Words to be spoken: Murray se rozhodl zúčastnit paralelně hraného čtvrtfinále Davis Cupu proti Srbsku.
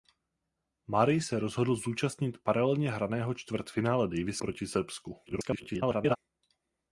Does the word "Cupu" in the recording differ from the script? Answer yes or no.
yes